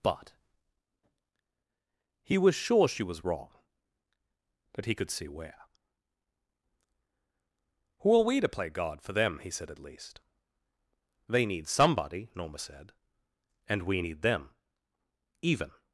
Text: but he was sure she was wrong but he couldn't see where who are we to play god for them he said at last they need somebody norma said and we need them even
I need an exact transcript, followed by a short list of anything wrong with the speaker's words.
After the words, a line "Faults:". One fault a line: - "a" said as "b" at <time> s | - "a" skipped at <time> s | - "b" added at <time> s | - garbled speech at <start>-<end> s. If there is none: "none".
but he was sure she was wrong but he could see where who are we to play god for them he said at least they need somebody norma said and we need them even
Faults:
- "couldn't" said as "could" at 5.0 s
- "last" said as "least" at 9.8 s